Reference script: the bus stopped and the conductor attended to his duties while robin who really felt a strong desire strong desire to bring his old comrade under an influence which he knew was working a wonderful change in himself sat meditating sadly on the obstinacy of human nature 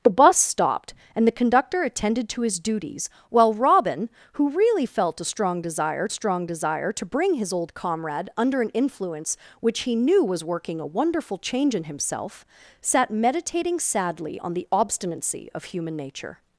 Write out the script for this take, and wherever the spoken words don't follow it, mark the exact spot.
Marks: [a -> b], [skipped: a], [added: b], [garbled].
the bus stopped and the conductor attended to his duties while robin who really felt a strong desire strong desire to bring his old comrade under an influence which he knew was working a wonderful change in himself sat meditating sadly on the obstinacy of human nature